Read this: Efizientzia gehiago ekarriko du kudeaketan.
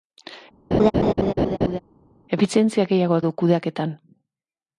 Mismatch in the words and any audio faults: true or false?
true